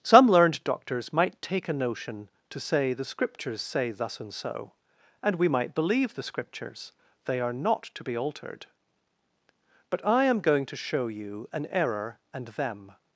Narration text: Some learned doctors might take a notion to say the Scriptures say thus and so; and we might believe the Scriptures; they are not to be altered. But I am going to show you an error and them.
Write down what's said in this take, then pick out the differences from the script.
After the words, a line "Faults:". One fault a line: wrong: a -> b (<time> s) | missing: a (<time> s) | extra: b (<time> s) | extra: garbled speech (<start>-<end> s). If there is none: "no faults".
Some learned doctors might take a notion to say the Scriptures say thus and so; and we might believe the Scriptures; they are not to be altered. But I am going to show you an error and them.
Faults:
no faults